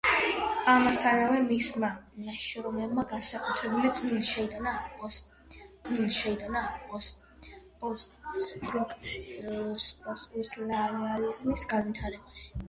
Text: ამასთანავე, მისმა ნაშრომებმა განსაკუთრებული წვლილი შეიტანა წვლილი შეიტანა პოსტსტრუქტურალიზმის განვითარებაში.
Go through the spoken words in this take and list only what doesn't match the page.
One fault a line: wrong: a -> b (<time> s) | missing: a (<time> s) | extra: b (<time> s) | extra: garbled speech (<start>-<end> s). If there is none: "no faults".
no faults